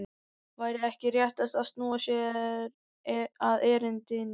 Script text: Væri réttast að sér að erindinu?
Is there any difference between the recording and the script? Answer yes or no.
yes